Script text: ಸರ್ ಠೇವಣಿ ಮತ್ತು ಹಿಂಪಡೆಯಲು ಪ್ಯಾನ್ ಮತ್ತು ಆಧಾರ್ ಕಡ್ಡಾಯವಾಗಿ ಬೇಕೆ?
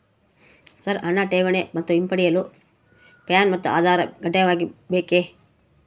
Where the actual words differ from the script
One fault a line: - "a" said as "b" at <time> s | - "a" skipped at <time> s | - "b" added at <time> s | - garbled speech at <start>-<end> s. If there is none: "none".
- "ಹಣ" added at 1.0 s